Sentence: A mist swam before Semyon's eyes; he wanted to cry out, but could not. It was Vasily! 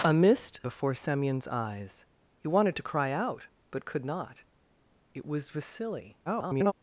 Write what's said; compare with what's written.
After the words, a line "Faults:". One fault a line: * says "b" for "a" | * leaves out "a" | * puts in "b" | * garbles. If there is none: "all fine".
A mist before Semyon's eyes; he wanted to cry out, but could not. It was Vasily! [garbled]
Faults:
* leaves out "swam"
* garbles